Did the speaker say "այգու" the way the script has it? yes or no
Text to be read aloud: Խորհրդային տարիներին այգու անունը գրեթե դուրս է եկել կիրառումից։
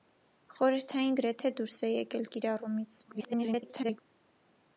no